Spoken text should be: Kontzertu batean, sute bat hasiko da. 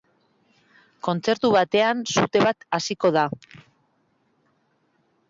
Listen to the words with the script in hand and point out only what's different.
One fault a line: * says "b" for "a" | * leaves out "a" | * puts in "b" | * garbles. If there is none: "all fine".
all fine